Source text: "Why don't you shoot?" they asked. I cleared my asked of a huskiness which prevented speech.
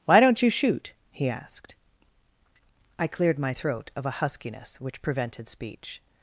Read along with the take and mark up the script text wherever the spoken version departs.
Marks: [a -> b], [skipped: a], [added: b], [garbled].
"Why don't you shoot?" [they -> he] asked. I cleared my [asked -> throat] of a huskiness which prevented speech.